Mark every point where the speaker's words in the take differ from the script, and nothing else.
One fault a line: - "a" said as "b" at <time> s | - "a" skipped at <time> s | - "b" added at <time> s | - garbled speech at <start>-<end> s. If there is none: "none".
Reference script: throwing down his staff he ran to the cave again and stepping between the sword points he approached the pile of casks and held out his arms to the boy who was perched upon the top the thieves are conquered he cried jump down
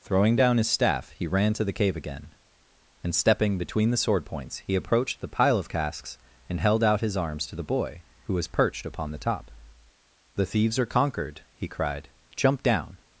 none